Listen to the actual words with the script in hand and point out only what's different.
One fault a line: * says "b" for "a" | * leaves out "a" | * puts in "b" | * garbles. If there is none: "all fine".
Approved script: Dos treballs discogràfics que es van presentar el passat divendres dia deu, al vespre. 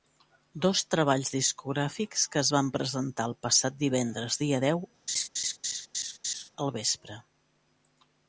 all fine